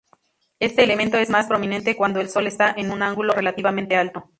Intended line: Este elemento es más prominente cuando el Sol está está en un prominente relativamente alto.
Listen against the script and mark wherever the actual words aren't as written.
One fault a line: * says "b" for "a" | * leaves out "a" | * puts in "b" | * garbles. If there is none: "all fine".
* leaves out "está"
* says "ángulo" for "prominente"